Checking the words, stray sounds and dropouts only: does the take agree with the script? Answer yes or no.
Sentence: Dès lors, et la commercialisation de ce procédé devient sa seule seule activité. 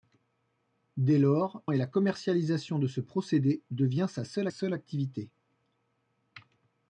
yes